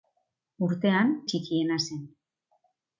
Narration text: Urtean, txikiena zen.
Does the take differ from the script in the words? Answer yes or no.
no